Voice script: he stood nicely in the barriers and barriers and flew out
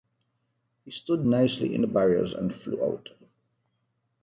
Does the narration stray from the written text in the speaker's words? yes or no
yes